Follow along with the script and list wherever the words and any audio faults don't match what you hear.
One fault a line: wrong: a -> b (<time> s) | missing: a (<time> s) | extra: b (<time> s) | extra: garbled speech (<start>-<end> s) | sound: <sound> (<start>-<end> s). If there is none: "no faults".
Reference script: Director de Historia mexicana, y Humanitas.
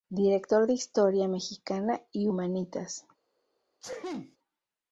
sound: sneeze (3.8-4.4 s)